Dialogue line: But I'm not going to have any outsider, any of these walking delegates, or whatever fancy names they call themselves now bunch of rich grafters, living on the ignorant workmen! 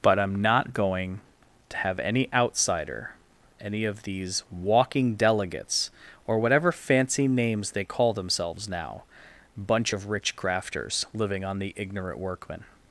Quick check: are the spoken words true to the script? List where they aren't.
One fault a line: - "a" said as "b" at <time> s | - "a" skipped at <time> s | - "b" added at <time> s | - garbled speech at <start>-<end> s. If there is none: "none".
none